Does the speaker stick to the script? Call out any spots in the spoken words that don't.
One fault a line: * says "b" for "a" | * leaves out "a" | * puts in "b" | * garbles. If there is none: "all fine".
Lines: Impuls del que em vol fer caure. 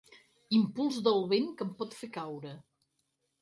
* puts in "vent"
* says "pot" for "vol"